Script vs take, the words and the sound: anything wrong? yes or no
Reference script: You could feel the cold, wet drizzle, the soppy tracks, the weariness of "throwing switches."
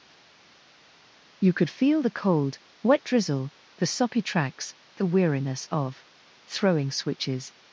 no